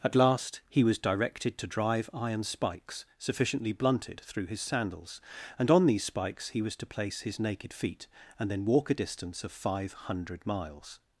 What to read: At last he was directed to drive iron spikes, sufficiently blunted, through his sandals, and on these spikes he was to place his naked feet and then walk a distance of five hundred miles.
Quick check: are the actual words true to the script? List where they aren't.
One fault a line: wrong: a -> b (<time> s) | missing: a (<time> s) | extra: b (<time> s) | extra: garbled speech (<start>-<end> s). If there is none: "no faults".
no faults